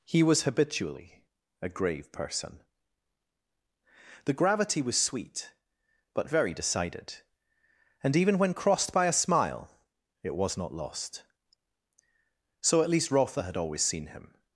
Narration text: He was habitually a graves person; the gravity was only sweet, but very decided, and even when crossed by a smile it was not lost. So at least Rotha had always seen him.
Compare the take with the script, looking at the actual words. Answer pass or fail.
fail